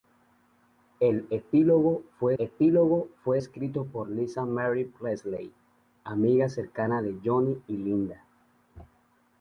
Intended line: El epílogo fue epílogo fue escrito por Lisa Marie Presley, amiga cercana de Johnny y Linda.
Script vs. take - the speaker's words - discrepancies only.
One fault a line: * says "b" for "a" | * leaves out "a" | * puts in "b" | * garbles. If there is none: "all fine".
all fine